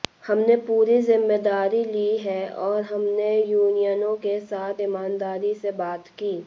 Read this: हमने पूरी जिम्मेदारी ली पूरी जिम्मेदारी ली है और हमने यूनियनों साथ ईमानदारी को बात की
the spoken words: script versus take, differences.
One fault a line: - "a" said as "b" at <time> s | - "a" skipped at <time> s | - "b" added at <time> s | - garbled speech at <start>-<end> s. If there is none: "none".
- "पूरी जिम्मेदारी ली" skipped at 2.2 s
- "के" added at 4.2 s
- "को" said as "से" at 5.5 s